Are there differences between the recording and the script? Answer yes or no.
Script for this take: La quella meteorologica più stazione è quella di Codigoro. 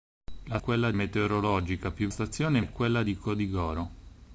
no